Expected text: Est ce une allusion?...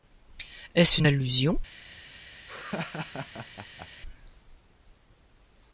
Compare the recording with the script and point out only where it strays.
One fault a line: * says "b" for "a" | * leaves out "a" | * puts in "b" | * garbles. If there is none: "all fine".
all fine